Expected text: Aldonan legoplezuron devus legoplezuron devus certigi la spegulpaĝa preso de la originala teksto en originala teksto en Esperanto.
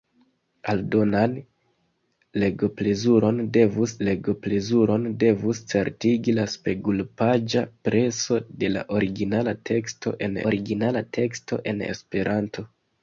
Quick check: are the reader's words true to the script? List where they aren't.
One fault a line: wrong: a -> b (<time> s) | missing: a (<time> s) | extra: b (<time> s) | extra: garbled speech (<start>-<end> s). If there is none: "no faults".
no faults